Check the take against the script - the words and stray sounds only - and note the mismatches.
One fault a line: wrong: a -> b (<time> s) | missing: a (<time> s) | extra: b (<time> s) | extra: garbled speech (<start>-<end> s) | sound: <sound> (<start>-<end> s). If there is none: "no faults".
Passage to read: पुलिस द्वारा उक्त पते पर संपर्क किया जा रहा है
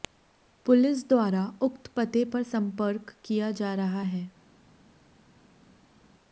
no faults